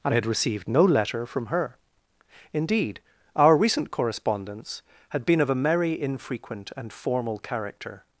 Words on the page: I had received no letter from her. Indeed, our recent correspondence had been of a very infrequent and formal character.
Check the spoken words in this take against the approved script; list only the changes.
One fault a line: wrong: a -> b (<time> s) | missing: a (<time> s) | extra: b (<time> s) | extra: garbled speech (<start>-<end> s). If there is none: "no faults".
wrong: very -> merry (5.5 s)